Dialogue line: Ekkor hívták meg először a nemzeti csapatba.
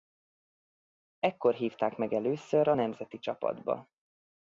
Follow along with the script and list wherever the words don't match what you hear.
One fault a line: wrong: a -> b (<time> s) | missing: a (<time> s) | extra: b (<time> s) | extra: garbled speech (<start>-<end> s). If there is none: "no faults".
no faults